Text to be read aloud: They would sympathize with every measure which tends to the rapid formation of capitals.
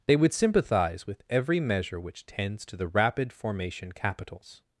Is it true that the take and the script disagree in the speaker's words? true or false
true